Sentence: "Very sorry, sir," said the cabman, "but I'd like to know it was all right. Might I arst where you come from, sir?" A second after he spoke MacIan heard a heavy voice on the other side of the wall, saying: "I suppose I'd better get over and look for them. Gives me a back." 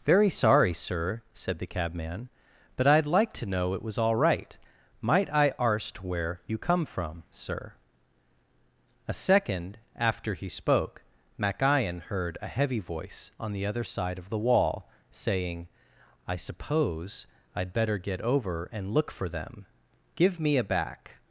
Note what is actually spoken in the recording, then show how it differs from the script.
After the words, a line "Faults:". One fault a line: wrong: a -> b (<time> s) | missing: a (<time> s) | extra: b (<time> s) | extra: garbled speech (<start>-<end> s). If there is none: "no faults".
"Very sorry, sir," said the cabman, "but I'd like to know it was all right. Might I arst where you come from, sir?" A second after he spoke MacIan heard a heavy voice on the other side of the wall, saying: "I suppose I'd better get over and look for them. Give me a back."
Faults:
wrong: Gives -> Give (20.1 s)